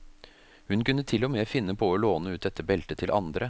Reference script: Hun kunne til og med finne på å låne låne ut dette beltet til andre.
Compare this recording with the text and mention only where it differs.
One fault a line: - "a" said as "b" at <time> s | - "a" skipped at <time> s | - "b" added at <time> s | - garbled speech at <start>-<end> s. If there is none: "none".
- "låne" skipped at 2.4 s